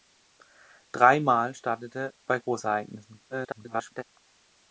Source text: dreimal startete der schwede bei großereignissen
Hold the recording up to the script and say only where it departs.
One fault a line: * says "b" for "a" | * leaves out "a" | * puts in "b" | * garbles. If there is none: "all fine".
* leaves out "der schwede"
* garbles